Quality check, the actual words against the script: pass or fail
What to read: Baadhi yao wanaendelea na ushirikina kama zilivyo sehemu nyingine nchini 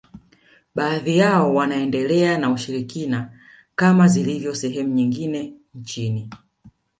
pass